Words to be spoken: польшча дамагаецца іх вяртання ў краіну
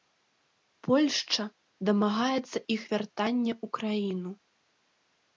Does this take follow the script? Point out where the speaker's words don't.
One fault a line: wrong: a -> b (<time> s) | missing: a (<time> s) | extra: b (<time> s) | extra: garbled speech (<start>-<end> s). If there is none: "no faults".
no faults